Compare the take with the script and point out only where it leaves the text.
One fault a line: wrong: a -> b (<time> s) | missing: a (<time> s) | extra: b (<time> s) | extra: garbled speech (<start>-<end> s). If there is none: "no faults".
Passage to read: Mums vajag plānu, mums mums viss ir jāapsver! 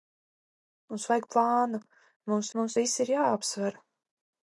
no faults